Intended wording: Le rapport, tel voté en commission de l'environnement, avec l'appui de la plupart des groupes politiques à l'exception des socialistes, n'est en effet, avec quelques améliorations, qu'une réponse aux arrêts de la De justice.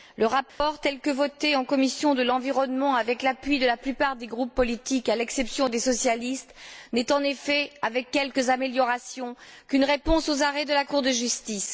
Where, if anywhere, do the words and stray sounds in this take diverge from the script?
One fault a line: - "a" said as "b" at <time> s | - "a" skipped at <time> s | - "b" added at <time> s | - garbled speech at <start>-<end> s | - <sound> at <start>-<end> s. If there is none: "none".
- dropout at 0.5-0.6 s
- "que" added at 1.0 s
- "Cour" added at 10.8 s